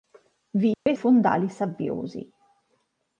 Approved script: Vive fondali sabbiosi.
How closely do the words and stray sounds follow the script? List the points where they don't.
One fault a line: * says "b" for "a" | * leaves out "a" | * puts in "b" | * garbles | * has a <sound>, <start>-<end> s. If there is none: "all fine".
* has a dropout, 0.7-0.9 s